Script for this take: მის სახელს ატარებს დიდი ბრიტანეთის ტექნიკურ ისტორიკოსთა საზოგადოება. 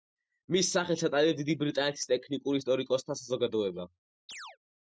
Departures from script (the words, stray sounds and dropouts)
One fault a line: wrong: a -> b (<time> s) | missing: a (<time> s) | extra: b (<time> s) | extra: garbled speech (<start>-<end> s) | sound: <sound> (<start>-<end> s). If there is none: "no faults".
sound: chirp (4.3-4.6 s)